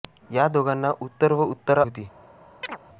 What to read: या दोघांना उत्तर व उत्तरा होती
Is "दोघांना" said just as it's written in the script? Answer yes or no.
yes